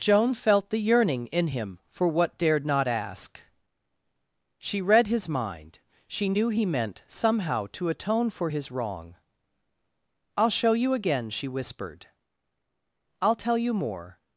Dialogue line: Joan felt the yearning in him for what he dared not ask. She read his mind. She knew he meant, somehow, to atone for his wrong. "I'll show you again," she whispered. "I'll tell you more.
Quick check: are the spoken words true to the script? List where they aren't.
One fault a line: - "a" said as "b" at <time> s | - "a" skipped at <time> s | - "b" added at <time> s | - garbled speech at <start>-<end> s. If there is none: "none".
- "he" skipped at 2.4 s